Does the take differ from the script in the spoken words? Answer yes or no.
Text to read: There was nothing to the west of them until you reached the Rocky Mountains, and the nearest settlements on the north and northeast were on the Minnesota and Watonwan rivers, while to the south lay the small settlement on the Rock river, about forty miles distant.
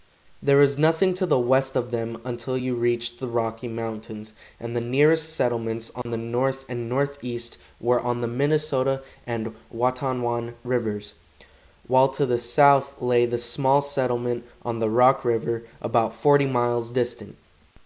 no